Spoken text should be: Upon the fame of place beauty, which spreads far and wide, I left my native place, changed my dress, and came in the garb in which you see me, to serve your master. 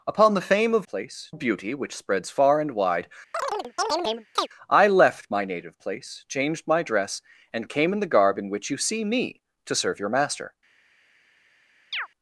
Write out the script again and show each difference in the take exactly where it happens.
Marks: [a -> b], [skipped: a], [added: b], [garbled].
Upon the fame of place beauty, which spreads far and wide, I left my native place, changed my dress, and came in the garb in which you see me, to serve your master.